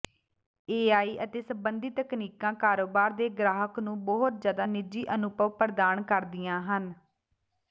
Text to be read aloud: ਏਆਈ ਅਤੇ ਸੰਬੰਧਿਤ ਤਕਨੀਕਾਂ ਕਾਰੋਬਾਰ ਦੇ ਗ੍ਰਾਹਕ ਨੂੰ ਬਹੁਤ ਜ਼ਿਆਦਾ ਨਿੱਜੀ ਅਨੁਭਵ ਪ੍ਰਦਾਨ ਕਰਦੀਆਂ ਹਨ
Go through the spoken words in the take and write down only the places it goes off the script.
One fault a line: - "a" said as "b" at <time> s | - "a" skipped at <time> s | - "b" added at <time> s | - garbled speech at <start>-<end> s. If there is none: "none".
none